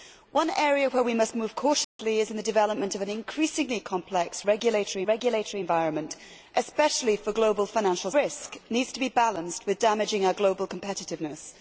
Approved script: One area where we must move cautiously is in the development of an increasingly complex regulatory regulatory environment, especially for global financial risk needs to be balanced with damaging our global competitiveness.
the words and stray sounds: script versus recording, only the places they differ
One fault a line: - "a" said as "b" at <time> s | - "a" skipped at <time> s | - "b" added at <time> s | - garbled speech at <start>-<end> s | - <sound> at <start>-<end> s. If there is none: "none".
- dropout at 1.8-2.0 s